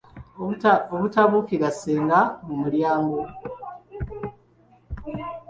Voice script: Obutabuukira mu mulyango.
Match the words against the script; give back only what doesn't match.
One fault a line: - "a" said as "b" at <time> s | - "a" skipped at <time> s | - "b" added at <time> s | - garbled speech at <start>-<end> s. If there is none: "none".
- "ssenga" added at 1.8 s